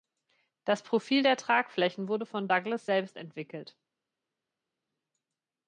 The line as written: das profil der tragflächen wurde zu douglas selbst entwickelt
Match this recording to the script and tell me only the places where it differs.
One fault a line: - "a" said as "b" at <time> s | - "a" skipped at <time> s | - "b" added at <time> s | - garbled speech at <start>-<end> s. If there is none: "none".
- "zu" said as "von" at 2.2 s